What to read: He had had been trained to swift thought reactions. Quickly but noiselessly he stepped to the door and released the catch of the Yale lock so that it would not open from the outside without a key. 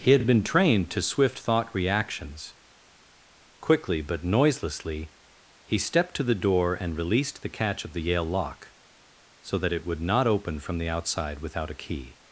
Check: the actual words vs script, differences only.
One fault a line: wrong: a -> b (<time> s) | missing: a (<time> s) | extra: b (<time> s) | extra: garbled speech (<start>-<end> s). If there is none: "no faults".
no faults